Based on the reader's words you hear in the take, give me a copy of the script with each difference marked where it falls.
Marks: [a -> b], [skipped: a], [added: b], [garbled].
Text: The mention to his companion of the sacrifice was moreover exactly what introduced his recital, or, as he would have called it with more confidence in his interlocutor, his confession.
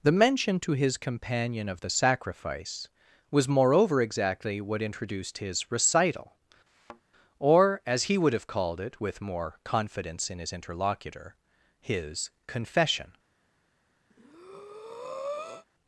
The mention to his companion of the sacrifice was moreover exactly what introduced his recital, or, as he would have called it with more confidence in his interlocutor, his confession.